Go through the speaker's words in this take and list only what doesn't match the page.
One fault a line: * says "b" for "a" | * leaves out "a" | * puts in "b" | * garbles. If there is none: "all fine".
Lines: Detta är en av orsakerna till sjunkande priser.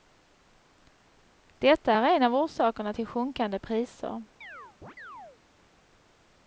all fine